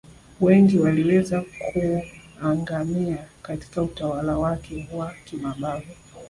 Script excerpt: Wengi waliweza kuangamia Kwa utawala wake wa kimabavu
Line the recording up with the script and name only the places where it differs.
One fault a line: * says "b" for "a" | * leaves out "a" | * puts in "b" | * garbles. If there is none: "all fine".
* says "Katika" for "Kwa"